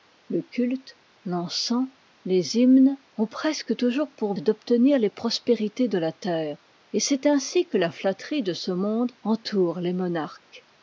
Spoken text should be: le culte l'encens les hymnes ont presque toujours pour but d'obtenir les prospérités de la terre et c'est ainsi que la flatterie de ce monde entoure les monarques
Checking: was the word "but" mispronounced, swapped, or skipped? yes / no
yes